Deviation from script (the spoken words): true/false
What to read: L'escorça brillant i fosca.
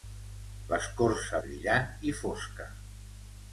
false